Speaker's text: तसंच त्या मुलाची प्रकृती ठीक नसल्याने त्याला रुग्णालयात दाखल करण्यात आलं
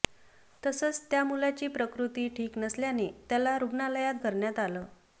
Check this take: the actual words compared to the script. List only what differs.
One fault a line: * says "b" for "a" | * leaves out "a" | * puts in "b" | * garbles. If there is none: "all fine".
* leaves out "दाखल"